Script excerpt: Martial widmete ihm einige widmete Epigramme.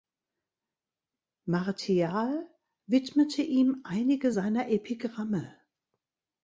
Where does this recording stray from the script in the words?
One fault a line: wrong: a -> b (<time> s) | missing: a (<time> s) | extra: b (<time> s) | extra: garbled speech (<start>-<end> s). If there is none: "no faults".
wrong: widmete -> seiner (4.3 s)